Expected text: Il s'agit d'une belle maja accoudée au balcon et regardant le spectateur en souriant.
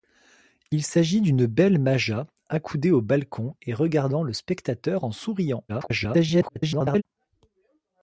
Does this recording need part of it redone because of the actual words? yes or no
yes